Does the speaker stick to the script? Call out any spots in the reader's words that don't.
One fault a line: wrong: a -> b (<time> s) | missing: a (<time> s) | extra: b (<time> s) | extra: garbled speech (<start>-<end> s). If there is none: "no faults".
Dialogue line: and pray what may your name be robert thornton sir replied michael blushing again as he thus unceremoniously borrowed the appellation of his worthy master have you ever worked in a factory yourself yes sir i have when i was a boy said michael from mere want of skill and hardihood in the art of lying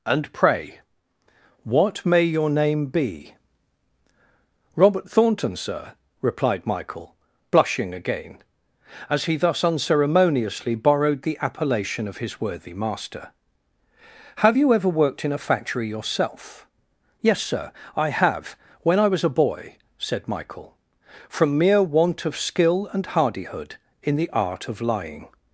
no faults